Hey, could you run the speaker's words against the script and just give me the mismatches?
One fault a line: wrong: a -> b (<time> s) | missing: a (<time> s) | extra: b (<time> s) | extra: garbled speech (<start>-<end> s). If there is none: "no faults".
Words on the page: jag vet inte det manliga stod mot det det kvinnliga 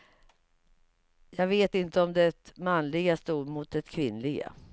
extra: om (2.0 s)
missing: det (3.8 s)